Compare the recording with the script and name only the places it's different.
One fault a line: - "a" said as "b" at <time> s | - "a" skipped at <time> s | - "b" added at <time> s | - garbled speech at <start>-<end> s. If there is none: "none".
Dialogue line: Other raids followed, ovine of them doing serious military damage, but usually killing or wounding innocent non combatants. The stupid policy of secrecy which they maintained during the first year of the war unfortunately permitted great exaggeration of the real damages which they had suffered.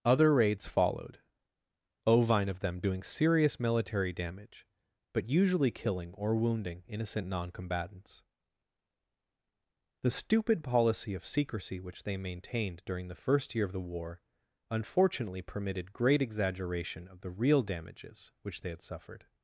none